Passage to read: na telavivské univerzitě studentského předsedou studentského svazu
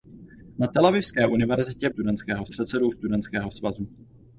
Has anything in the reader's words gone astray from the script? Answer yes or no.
no